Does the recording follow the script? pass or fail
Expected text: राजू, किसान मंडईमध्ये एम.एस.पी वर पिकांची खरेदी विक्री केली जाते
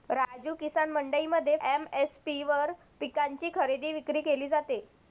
pass